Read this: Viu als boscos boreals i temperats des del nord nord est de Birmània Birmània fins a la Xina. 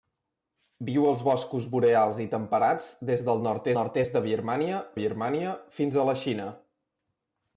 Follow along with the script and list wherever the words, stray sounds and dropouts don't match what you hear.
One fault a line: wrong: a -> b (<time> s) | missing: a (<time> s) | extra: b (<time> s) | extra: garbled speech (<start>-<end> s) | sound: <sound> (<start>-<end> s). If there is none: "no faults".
no faults